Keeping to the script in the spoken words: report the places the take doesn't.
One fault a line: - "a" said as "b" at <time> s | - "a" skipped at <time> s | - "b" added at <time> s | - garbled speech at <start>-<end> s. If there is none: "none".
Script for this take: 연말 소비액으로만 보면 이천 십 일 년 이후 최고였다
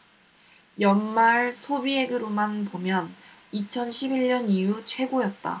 none